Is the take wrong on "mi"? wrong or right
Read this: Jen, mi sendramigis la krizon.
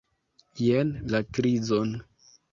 wrong